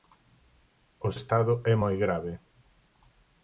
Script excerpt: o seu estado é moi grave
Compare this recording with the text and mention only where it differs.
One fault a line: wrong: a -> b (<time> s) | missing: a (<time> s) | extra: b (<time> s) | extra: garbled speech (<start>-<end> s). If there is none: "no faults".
missing: seu (1.1 s)